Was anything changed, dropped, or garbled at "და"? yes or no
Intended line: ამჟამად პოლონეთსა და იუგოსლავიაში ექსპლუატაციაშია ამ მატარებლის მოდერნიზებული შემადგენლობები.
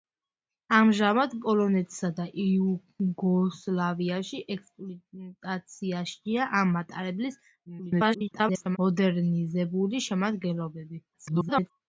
no